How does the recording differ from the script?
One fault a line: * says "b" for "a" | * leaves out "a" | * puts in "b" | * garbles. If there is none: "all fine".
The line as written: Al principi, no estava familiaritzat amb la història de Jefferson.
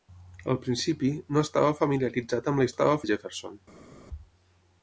* says "estava" for "història"